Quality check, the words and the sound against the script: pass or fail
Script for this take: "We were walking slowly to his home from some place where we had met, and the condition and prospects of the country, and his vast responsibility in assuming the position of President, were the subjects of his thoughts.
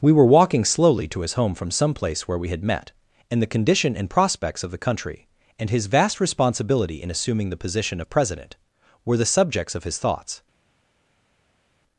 pass